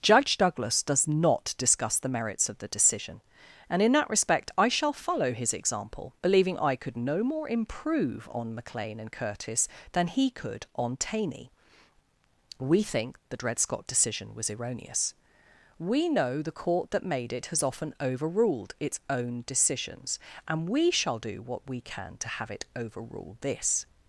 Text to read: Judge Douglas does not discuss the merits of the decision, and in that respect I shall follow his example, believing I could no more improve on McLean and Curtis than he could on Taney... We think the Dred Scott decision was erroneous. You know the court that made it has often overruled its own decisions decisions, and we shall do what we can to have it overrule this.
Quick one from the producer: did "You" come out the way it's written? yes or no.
no